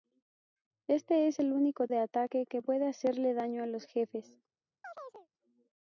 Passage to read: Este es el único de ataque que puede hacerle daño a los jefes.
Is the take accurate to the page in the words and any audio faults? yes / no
no